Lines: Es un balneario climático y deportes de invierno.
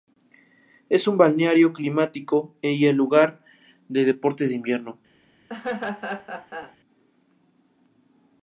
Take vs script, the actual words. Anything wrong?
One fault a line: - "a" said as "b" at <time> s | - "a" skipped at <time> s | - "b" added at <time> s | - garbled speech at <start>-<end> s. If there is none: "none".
- "lugar de" added at 3.0 s